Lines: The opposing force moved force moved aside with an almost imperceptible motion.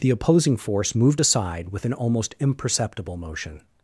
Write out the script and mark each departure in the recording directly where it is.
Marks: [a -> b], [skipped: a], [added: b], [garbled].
The opposing force moved [skipped: force moved] aside with an almost imperceptible motion.